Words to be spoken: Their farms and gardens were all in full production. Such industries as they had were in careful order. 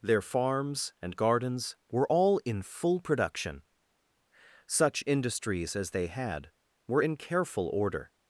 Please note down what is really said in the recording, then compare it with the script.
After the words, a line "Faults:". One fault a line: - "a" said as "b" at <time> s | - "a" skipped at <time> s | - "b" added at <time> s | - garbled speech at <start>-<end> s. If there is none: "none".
Their farms and gardens were all in full production. Such industries as they had were in careful order.
Faults:
none